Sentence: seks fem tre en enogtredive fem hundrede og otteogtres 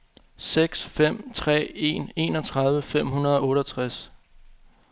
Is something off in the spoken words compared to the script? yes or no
no